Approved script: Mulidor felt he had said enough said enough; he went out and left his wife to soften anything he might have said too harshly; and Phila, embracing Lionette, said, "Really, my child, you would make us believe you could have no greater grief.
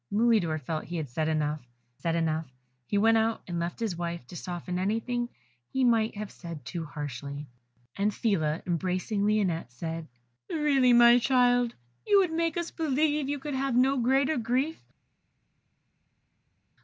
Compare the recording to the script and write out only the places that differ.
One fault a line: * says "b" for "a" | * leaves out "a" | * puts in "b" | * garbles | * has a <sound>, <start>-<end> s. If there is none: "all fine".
all fine